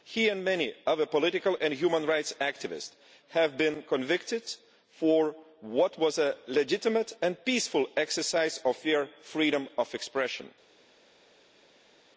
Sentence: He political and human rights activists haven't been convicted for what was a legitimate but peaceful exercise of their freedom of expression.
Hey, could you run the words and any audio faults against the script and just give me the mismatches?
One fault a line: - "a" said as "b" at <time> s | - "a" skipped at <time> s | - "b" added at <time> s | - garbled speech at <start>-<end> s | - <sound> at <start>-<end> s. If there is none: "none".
- "and many other" added at 0.3 s
- "haven't" said as "have" at 3.3 s
- "but" said as "and" at 7.2 s